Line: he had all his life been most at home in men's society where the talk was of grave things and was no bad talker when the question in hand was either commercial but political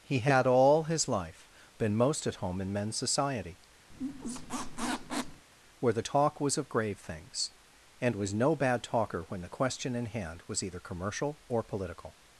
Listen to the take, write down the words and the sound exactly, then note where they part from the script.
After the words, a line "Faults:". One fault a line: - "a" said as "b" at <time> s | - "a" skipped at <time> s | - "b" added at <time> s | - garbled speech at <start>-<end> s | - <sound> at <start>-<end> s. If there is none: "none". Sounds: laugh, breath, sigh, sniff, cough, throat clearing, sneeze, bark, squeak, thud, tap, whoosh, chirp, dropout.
he had all his life been most at home in men's society where the talk was of grave things and was no bad talker when the question in hand was either commercial or political
Faults:
- squeak at 3.9-5.5 s
- "but" said as "or" at 11.5 s